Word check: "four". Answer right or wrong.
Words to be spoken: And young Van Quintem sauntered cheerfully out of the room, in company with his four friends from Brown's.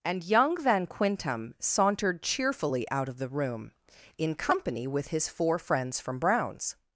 right